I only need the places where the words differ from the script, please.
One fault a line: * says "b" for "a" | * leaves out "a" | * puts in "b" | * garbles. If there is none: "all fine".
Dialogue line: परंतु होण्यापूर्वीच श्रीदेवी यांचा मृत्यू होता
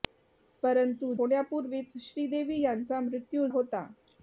all fine